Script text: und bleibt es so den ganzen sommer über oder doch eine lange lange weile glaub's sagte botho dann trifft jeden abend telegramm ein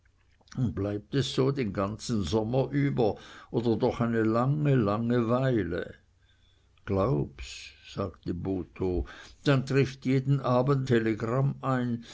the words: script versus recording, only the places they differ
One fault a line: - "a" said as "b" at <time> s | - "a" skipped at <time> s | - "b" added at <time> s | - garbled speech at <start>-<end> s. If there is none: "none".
none